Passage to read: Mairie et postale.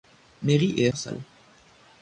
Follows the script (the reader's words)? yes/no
yes